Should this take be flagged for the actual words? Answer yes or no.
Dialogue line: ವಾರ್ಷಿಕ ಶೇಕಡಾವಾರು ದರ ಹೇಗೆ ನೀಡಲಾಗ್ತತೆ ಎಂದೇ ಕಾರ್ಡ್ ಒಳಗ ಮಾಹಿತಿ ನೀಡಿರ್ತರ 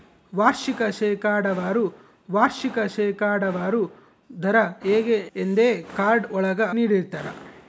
yes